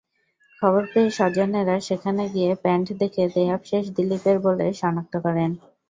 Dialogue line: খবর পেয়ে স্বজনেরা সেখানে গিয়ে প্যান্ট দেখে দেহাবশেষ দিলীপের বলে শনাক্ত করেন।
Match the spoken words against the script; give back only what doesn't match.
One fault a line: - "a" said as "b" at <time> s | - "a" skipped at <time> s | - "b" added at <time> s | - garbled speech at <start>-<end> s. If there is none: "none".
none